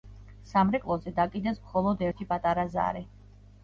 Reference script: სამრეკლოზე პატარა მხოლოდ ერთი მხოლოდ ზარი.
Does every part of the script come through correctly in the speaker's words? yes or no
no